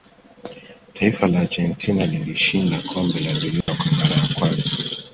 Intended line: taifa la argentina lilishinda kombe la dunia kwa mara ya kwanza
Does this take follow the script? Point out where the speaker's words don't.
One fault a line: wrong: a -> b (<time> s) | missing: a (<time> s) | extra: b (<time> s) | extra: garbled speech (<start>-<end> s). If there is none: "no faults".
no faults